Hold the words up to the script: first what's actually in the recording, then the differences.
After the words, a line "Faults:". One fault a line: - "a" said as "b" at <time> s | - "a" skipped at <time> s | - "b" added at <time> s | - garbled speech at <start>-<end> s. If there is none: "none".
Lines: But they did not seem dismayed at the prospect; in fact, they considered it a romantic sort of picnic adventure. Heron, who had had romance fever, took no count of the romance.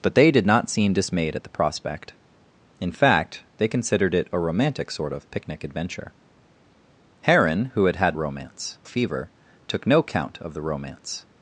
But they did not seem dismayed at the prospect; in fact, they considered it a romantic sort of picnic adventure. Heron, who had had romance fever, took no count of the romance.
Faults:
none